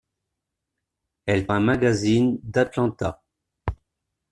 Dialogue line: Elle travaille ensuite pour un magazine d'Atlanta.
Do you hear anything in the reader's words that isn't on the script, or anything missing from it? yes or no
yes